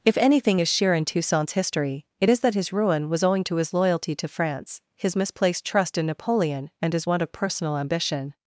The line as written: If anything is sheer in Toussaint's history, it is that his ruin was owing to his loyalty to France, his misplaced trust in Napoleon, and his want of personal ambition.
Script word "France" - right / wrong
right